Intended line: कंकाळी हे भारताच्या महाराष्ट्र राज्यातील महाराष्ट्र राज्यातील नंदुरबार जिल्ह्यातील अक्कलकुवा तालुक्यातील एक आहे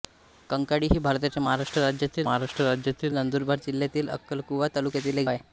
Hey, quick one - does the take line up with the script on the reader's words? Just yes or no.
yes